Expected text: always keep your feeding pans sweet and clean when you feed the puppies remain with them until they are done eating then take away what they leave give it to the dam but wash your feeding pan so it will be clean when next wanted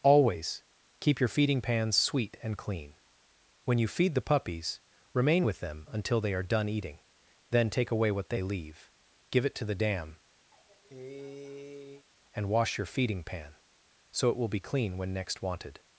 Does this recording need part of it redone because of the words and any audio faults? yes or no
yes